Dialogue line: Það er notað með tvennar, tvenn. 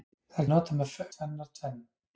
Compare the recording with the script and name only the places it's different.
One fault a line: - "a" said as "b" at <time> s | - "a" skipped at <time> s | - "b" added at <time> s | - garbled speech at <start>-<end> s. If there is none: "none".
none